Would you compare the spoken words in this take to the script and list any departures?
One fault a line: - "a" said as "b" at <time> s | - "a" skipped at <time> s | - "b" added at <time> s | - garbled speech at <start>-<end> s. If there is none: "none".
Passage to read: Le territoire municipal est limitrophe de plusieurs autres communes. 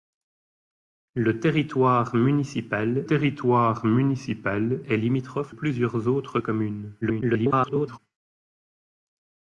- "territoire municipal" added at 3.1 s
- "de" skipped at 5.6 s
- garbled speech at 7.0-8.0 s